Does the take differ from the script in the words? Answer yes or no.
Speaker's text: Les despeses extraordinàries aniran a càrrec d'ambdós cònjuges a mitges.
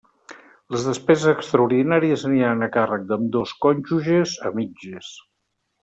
no